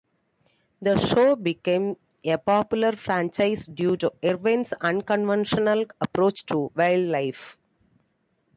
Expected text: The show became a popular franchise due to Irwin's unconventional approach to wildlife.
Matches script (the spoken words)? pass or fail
pass